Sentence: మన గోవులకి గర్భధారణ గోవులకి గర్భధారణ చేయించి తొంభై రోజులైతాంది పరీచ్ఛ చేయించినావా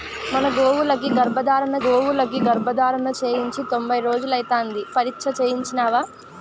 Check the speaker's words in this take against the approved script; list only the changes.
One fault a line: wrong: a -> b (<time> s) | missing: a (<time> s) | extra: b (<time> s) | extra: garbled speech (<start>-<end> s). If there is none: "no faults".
no faults